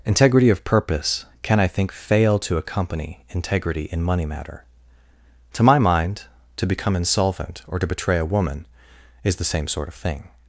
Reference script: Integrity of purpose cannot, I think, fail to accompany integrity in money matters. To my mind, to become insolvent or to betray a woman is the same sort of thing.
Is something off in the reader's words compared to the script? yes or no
yes